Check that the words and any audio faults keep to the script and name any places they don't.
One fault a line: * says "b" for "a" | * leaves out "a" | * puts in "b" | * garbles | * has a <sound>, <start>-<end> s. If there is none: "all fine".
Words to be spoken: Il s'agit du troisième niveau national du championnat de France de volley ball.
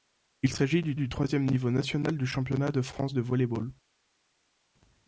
* puts in "du"